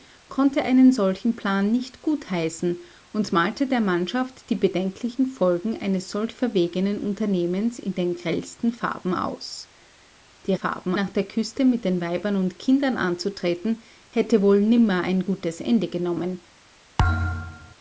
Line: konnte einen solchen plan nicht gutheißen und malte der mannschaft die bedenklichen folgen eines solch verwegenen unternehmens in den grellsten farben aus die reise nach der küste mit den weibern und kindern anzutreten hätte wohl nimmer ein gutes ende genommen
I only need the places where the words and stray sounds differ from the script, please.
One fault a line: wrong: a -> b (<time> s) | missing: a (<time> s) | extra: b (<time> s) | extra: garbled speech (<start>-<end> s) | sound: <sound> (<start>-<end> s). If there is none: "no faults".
wrong: reise -> farben (10.5 s)
sound: thud (17.0-17.7 s)